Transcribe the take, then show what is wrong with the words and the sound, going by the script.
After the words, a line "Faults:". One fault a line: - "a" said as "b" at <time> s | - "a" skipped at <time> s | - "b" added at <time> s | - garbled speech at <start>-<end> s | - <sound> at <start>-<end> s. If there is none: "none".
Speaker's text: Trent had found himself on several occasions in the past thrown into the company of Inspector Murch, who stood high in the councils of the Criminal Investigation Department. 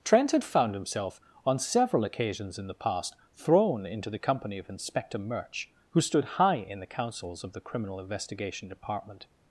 Trent had found himself on several occasions in the past thrown into the company of Inspector Murch, who stood high in the councils of the Criminal Investigation Department.
Faults:
none